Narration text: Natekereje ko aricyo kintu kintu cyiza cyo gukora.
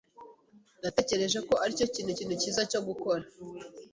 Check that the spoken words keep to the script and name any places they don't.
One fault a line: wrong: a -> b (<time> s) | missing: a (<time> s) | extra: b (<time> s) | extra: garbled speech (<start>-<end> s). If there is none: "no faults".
no faults